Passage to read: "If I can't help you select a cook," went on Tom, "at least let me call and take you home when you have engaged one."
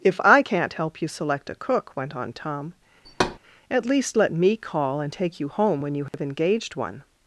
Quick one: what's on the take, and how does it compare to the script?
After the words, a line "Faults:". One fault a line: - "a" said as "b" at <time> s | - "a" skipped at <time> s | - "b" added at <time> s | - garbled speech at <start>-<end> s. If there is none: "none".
"If I can't help you select a cook," went on Tom, "at least let me call and take you home when you have engaged one."
Faults:
none